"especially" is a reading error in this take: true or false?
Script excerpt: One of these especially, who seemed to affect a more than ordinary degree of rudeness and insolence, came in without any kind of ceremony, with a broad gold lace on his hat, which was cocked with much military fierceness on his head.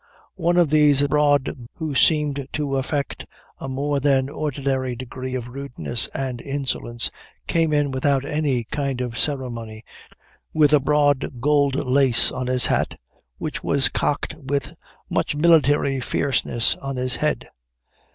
true